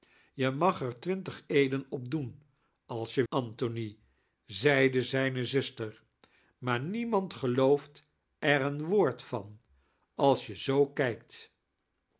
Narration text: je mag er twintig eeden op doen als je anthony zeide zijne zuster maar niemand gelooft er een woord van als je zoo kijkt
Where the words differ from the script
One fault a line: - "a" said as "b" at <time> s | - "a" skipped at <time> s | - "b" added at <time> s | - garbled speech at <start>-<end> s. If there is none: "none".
none